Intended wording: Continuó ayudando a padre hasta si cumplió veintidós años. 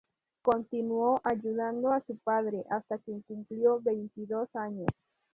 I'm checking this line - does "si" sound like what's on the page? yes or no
no